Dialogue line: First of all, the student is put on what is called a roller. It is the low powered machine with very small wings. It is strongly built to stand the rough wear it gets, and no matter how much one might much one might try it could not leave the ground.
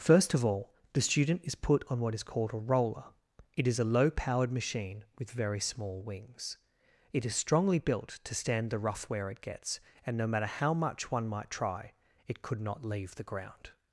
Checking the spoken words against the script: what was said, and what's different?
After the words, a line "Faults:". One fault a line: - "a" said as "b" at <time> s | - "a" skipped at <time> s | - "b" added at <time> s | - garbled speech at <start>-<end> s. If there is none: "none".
First of all, the student is put on what is called a roller. It is a low powered machine with very small wings. It is strongly built to stand the rough wear it gets, and no matter how much one might try it could not leave the ground.
Faults:
- "the" said as "a" at 3.8 s
- "much one might" skipped at 11.5 s